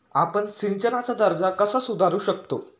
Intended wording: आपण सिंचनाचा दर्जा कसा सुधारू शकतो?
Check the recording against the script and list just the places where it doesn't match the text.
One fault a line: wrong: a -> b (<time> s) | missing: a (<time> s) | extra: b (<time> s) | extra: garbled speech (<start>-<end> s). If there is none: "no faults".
no faults